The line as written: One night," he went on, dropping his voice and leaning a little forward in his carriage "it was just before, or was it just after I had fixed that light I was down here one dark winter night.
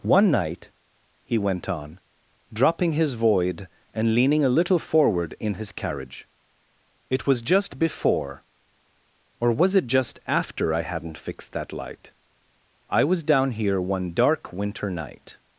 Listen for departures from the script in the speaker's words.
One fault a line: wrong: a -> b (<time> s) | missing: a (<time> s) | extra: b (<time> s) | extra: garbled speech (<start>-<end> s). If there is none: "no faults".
wrong: voice -> void (3.1 s)
wrong: had -> hadn't (10.8 s)